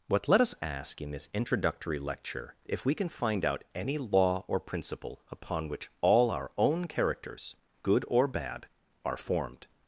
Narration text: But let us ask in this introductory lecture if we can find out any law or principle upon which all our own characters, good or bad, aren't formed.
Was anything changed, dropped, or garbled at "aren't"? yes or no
yes